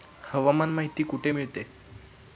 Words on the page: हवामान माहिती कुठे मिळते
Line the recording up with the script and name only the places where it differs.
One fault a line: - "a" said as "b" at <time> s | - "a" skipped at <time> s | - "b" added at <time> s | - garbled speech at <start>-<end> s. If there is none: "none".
none